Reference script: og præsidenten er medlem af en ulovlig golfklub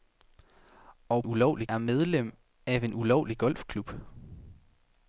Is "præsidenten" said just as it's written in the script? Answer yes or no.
no